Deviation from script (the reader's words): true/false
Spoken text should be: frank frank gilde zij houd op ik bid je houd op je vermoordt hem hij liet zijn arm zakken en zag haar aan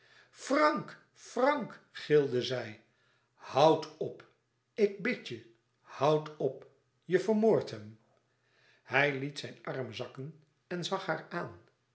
false